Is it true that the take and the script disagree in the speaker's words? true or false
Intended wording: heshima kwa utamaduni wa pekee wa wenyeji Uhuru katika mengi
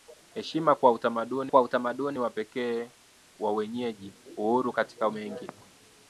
true